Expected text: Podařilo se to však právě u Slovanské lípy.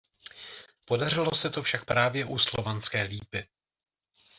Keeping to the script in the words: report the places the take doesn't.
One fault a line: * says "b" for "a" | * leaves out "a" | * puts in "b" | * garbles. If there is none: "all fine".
all fine